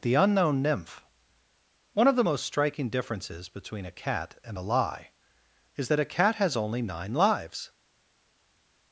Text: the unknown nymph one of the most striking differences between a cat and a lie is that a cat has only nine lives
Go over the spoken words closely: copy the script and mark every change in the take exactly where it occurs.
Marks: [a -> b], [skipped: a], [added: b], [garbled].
the unknown nymph one of the most striking differences between a cat and a lie is that a cat has only nine lives